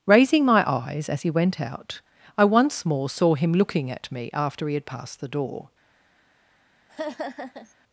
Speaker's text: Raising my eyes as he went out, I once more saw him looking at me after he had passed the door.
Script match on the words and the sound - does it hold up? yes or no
no